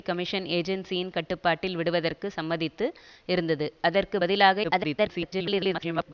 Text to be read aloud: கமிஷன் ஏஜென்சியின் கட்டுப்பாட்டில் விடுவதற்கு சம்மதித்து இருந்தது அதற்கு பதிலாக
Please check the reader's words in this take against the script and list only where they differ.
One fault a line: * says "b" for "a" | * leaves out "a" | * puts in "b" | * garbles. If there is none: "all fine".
* garbles